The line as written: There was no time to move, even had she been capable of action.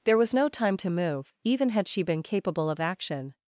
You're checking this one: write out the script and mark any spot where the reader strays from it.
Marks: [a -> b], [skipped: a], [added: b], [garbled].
There was no time to move, even had she been capable of action.